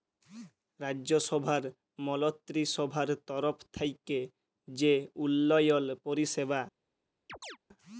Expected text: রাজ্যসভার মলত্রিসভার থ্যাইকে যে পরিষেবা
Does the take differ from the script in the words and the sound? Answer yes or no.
yes